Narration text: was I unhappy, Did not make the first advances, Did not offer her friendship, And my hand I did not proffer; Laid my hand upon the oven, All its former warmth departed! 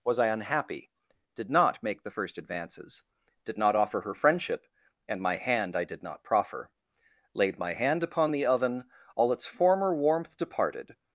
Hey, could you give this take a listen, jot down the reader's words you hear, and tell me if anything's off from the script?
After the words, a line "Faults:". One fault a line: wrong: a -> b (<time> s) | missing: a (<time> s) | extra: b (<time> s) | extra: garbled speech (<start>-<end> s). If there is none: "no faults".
was I unhappy, Did not make the first advances, Did not offer her friendship, And my hand I did not proffer; Laid my hand upon the oven, All its former warmth departed!
Faults:
no faults